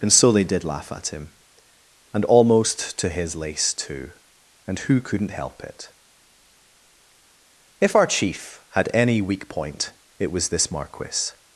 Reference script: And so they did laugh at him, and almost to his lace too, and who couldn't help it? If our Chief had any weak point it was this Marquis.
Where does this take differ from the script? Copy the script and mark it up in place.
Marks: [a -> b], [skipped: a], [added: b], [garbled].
And so they did laugh at him, and almost to his lace too, and who couldn't help it? If our Chief had any weak point it was this Marquis.